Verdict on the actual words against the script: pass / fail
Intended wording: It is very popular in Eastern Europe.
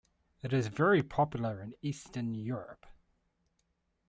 pass